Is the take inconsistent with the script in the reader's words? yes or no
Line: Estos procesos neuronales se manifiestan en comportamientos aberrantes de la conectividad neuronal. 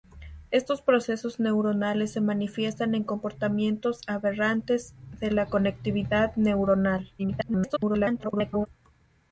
yes